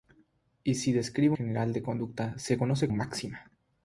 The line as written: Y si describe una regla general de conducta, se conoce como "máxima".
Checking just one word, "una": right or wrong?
wrong